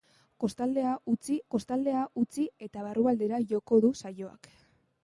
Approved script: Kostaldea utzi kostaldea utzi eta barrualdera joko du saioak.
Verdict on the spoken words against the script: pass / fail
pass